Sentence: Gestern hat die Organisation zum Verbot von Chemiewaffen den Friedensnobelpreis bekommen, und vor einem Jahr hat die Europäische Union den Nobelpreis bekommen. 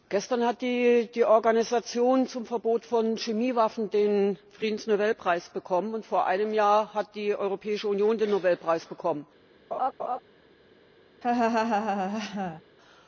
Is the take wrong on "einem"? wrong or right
right